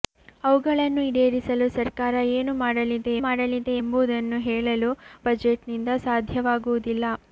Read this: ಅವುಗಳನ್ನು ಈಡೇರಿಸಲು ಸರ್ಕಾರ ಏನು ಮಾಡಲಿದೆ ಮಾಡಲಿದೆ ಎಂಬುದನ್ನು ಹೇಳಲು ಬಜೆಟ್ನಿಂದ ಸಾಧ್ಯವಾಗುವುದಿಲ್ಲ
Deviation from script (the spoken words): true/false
false